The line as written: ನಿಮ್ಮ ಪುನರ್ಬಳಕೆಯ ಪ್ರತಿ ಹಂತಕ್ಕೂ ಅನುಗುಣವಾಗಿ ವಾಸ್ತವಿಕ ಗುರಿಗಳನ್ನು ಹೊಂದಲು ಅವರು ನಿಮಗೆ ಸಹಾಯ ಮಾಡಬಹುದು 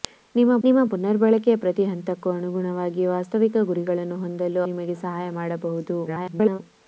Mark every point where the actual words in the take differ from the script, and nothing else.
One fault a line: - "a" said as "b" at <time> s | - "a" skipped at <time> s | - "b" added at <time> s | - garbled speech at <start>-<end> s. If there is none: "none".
- "ನಿಮ್ಮ" added at 0.6 s
- "ಅವರು" skipped at 4.6 s
- garbled speech at 6.1-6.6 s